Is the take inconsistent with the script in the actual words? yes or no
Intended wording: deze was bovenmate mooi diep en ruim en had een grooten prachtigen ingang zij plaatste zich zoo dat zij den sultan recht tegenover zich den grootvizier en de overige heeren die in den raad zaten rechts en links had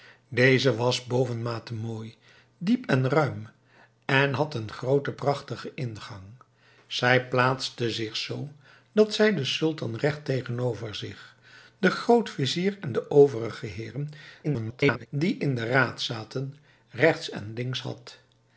yes